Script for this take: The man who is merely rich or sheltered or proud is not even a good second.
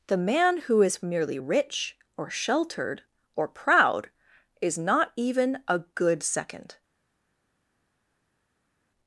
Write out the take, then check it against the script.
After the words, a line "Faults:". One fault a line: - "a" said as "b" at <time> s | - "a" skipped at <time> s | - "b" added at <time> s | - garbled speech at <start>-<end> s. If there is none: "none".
The man who is merely rich or sheltered or proud is not even a good second.
Faults:
none